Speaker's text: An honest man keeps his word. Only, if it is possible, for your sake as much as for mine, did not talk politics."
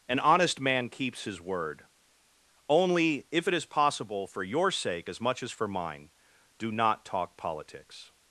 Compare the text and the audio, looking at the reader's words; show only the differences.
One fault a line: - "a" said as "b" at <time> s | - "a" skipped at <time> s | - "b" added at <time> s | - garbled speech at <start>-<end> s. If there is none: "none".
- "did" said as "do" at 6.6 s